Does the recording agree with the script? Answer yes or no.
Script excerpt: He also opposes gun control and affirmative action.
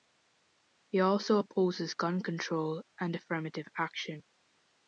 yes